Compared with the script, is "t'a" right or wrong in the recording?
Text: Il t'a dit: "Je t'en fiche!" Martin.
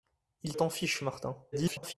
wrong